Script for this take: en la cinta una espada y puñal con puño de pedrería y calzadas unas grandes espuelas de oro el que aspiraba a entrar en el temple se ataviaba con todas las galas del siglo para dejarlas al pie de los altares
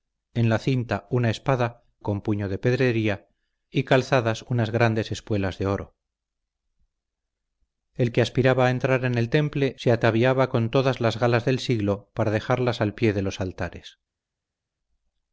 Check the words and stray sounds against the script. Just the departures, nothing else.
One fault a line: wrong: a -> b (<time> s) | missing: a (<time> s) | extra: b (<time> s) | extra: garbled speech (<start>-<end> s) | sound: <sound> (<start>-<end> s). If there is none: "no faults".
missing: y puñal (1.8 s)